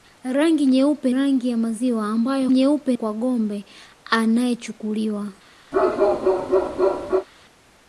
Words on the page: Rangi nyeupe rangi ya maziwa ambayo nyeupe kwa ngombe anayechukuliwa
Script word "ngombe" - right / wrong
right